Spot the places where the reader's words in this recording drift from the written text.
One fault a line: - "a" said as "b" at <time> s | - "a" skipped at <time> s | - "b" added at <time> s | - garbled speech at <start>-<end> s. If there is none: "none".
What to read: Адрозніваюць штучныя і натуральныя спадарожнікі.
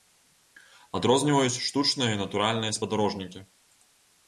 none